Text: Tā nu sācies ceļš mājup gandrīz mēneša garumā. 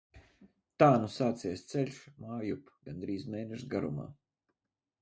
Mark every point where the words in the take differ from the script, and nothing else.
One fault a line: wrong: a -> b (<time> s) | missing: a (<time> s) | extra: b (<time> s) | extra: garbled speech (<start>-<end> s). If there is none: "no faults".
no faults